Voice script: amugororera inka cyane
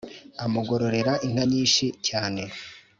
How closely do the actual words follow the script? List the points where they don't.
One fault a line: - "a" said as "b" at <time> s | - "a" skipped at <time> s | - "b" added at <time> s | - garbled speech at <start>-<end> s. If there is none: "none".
- "nyinshi" added at 1.5 s